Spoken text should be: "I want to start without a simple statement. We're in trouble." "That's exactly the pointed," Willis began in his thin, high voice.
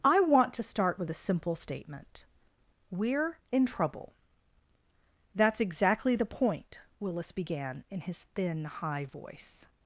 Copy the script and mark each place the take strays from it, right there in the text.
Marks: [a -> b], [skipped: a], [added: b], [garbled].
"I want to start [without -> with] a simple statement. We're in trouble." "That's exactly the [pointed," -> point] Willis began in his thin, high voice.